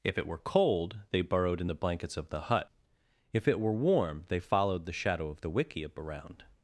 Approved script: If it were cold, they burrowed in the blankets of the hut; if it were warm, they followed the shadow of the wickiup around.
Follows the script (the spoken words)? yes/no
yes